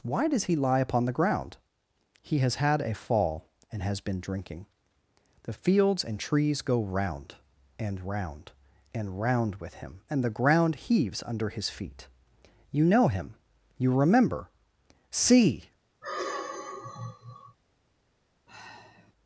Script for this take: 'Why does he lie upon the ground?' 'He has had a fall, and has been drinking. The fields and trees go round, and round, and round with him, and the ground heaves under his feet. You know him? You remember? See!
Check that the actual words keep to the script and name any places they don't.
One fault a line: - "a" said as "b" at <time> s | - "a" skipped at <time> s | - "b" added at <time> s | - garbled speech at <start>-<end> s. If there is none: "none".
none